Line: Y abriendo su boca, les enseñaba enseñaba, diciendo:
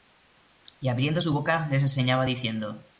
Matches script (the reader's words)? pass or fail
fail